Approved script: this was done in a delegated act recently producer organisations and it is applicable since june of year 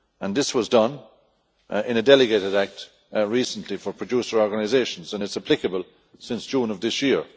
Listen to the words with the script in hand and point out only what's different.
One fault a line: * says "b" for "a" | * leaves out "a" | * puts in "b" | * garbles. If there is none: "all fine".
* puts in "for"
* puts in "this"